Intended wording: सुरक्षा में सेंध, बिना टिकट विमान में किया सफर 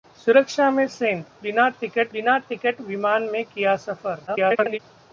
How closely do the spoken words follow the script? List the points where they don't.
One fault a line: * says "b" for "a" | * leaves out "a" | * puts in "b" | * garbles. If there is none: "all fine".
* puts in "बिना टिकट"
* garbles